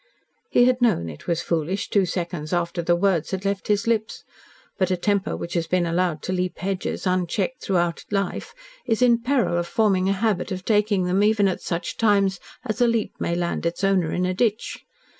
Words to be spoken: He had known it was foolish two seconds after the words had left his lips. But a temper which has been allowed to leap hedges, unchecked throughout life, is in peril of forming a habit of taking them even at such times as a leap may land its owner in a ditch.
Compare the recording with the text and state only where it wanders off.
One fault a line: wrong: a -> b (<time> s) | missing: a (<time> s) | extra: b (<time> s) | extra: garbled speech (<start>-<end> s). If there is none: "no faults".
no faults